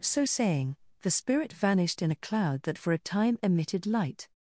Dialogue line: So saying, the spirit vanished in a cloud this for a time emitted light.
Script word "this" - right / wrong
wrong